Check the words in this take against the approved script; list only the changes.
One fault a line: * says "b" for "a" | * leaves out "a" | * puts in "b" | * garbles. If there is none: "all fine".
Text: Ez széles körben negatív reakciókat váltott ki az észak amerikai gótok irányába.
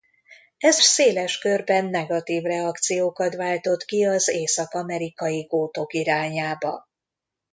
all fine